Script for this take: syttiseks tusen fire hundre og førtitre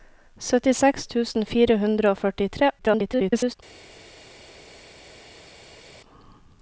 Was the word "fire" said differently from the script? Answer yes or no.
no